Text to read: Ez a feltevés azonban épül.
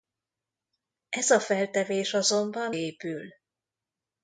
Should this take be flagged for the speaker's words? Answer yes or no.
no